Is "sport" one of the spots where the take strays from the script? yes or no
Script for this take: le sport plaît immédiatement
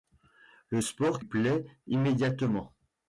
no